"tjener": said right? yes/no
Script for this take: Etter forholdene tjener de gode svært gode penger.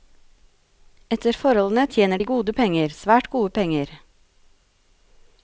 yes